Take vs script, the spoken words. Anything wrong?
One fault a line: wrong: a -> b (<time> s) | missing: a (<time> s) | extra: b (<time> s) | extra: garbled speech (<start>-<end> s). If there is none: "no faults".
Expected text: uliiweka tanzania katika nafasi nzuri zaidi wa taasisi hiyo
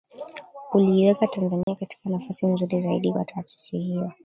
no faults